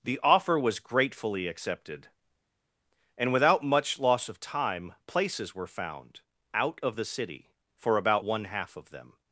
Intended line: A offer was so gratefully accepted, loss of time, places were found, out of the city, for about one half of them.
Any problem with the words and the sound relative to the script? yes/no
yes